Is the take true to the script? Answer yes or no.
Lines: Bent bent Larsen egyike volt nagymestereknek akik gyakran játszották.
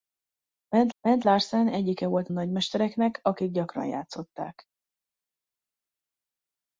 yes